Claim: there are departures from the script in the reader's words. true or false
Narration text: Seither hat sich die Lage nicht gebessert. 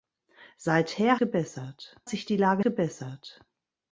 true